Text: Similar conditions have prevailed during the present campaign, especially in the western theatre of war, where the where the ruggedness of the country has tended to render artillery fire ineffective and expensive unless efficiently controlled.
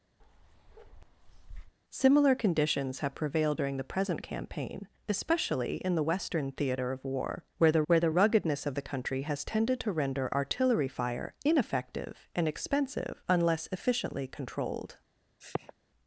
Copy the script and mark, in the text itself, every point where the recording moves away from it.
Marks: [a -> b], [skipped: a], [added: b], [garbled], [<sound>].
[bark] Similar conditions have prevailed during the present campaign, especially in the western theatre of war, where the where the ruggedness of the country has tended to render artillery fire ineffective and expensive unless efficiently controlled. [sniff]